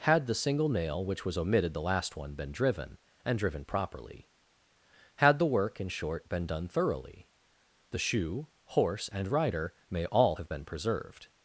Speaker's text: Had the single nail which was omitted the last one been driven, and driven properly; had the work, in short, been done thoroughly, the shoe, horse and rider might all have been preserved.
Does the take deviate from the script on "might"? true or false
true